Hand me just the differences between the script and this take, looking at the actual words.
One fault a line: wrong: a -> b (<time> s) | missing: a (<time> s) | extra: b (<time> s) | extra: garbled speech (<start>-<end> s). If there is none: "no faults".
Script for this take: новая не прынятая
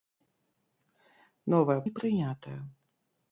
no faults